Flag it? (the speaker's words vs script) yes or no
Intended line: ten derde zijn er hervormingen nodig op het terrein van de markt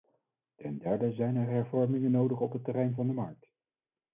no